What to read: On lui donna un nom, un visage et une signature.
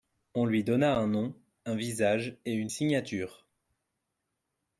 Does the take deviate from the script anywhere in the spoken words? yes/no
no